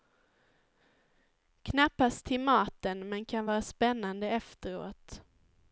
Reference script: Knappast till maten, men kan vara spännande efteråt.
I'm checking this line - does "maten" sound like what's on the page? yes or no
yes